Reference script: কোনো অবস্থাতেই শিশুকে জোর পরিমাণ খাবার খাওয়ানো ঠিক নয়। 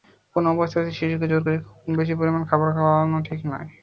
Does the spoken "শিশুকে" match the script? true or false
true